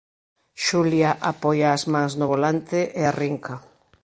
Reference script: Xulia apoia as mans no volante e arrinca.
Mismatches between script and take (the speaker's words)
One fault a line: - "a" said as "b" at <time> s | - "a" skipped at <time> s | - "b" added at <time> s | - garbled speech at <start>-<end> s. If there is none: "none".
none